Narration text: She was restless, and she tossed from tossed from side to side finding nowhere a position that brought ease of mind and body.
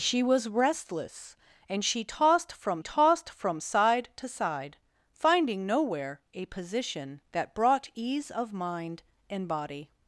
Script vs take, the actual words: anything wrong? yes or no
no